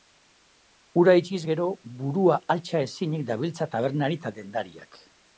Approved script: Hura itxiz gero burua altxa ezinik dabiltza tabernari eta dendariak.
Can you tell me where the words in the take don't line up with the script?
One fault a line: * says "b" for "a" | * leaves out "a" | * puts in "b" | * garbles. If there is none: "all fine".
all fine